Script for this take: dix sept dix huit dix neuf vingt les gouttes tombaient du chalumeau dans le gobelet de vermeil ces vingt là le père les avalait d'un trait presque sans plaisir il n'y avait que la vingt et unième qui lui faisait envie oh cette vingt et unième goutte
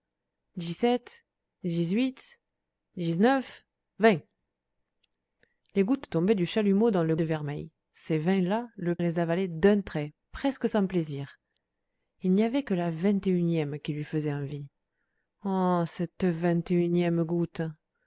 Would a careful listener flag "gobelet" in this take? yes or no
yes